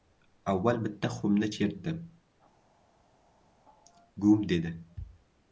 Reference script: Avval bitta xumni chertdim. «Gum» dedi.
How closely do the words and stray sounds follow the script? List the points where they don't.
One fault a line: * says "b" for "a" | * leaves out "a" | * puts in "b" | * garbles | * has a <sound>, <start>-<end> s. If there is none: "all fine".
all fine